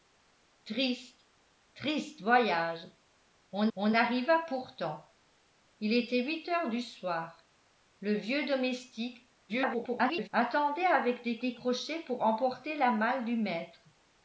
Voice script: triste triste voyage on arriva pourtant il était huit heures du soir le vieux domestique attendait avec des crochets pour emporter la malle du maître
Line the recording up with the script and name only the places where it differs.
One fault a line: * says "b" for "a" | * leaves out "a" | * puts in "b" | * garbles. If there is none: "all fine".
* puts in "on"
* garbles
* puts in "des"